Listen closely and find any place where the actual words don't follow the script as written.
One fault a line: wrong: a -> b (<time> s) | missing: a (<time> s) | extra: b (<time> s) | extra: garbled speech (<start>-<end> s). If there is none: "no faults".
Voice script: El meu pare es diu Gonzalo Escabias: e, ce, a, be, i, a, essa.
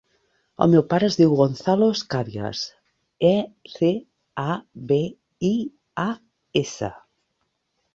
no faults